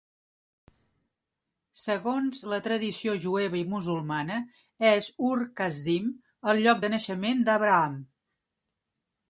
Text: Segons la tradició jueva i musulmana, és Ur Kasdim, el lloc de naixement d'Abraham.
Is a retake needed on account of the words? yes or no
no